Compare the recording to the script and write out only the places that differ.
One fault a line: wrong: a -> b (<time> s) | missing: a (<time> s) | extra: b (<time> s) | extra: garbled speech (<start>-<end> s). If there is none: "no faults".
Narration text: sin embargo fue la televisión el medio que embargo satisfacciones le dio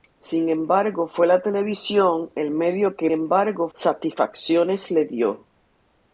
no faults